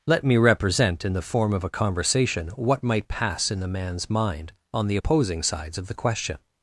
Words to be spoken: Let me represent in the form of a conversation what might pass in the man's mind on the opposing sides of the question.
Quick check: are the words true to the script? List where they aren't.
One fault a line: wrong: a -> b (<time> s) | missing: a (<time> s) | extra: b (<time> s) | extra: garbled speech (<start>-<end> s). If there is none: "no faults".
no faults